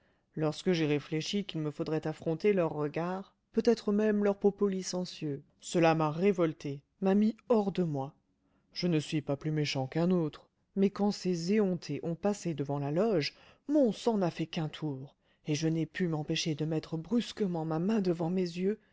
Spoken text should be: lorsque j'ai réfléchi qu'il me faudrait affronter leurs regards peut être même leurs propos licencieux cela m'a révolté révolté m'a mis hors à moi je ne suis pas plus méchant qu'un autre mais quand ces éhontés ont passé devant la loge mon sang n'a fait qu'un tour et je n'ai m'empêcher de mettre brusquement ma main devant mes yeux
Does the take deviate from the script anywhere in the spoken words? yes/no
yes